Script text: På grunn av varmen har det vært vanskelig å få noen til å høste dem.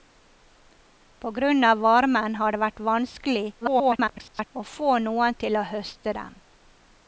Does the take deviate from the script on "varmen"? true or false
false